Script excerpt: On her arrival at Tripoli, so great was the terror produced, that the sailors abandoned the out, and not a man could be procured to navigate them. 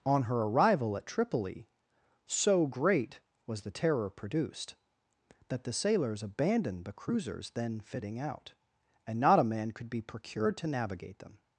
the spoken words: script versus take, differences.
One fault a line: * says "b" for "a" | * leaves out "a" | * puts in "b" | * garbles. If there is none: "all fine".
* puts in "cruisers then fitting"